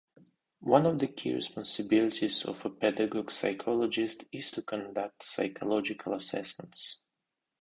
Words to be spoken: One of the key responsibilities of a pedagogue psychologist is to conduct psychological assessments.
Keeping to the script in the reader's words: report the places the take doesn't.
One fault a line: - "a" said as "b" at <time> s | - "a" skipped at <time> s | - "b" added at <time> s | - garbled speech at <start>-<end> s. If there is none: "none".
none